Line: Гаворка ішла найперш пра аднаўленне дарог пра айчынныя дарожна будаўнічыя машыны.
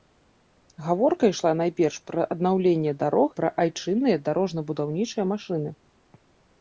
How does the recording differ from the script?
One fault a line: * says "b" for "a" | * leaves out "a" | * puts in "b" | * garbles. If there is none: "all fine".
all fine